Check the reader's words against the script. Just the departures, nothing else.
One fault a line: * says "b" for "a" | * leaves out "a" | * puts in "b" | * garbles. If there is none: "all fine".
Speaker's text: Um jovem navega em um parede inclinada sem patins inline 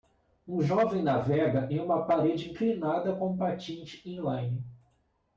* says "uma" for "um"
* says "com" for "sem"